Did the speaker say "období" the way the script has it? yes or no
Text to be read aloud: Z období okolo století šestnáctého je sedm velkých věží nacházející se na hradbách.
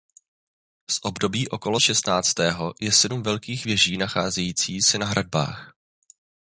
yes